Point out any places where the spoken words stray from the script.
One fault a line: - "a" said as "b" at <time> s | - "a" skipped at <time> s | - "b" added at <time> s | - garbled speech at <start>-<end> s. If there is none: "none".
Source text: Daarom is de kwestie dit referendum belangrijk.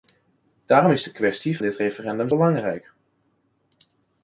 none